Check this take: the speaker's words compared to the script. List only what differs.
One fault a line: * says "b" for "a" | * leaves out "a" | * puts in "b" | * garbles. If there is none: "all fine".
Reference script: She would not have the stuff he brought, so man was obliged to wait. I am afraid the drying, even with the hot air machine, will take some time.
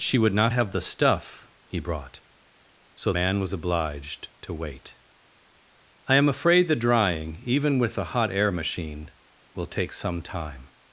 all fine